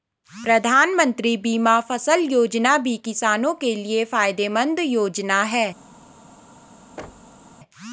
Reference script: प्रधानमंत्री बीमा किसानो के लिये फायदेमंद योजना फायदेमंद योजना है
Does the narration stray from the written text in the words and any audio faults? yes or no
yes